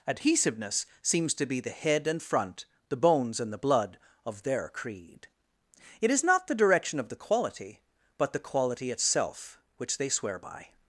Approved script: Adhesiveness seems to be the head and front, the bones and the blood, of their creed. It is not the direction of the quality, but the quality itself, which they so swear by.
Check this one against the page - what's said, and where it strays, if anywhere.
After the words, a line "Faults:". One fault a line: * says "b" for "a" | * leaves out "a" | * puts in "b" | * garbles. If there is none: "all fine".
Adhesiveness seems to be the head and front, the bones and the blood, of their creed. It is not the direction of the quality, but the quality itself, which they swear by.
Faults:
* leaves out "so"